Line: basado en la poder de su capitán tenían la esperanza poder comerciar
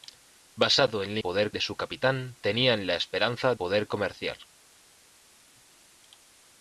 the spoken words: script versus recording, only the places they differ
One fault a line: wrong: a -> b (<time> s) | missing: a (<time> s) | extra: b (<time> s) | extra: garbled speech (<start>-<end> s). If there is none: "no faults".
no faults